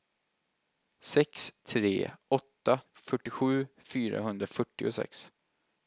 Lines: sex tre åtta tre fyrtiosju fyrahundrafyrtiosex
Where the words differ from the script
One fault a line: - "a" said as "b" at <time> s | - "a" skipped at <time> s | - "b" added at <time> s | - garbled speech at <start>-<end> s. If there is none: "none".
- "tre" skipped at 2.8 s